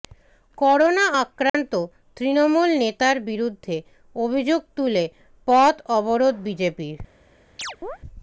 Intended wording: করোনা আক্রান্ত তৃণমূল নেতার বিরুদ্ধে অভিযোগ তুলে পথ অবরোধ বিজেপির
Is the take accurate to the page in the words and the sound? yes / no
no